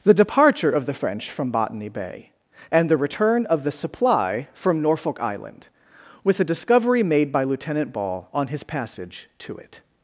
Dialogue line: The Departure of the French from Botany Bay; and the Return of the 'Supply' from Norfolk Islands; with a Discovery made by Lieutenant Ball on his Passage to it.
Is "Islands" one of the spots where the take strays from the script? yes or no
yes